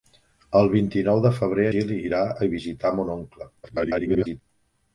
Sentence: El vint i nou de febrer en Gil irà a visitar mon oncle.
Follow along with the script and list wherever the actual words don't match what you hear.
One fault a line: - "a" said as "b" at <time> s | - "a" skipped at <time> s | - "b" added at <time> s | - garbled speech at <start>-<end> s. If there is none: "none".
- "en" skipped at 1.7 s
- garbled speech at 3.6-4.4 s